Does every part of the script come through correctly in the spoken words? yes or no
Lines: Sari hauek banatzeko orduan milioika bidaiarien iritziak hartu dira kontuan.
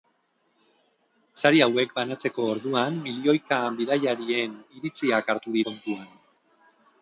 no